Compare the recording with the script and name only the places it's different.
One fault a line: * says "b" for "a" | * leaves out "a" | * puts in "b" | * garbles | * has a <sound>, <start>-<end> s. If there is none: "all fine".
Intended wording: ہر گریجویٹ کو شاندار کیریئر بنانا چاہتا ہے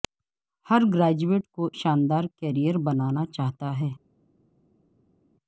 all fine